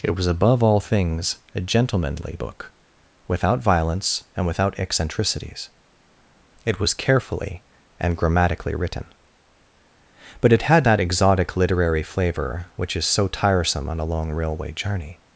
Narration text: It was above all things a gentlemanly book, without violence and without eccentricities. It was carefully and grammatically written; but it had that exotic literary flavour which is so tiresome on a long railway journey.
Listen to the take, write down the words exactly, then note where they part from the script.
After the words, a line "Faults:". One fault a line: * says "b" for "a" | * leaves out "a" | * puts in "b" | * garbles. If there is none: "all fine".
It was above all things a gentlemanly book, without violence and without eccentricities. It was carefully and grammatically written; but it had that exotic literary flavour which is so tiresome on a long railway journey.
Faults:
all fine